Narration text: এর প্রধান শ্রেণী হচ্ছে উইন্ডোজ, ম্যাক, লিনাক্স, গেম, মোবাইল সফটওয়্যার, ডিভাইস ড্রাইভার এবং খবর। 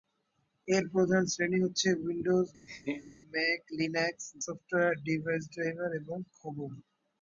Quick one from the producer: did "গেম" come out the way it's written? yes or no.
no